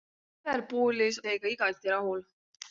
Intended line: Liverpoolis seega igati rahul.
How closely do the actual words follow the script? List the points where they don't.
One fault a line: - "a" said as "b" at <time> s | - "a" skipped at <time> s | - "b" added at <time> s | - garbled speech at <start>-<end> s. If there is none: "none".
none